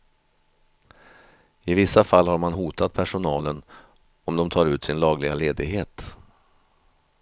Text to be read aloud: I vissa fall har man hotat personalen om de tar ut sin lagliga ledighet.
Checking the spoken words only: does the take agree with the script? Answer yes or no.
yes